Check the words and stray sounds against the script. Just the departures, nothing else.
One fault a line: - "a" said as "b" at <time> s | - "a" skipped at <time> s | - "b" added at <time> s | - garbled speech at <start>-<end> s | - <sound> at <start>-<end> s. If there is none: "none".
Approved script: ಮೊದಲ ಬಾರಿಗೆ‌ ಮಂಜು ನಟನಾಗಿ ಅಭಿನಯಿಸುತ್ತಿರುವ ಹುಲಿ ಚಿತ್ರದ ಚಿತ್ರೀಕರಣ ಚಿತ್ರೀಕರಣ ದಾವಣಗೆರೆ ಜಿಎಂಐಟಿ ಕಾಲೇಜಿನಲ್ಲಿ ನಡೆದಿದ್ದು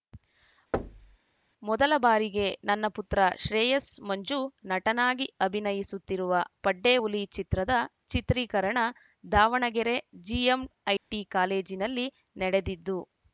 - thud at 0.7-1.2 s
- "ನನ್ನ ಪುತ್ರ ಶ್ರೇಯಸ್" added at 2.7 s
- "ಪಡ್ಡೆ" added at 6.6 s
- "ಚಿತ್ರೀಕರಣ" skipped at 8.8 s
- dropout at 11.0-11.1 s